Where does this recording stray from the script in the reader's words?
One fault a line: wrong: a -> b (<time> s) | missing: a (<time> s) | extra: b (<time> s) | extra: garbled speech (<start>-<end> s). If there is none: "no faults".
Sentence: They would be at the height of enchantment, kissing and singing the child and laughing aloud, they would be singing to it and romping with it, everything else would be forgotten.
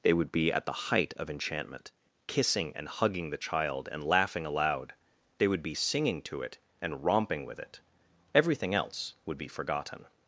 wrong: singing -> hugging (2.9 s)